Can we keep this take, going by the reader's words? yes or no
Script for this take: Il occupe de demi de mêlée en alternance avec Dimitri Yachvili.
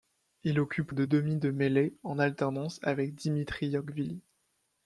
yes